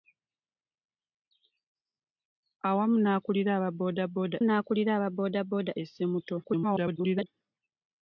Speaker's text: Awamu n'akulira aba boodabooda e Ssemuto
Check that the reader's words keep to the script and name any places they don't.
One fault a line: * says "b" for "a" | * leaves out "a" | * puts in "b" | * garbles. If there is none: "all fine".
* puts in "n'akulira aba boodabooda"
* garbles